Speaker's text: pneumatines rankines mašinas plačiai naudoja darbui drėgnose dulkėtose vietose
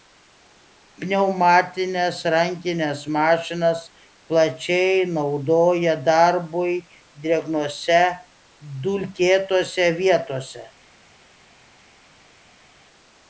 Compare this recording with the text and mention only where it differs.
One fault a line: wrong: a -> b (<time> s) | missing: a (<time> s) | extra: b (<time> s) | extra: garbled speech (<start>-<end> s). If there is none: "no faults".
no faults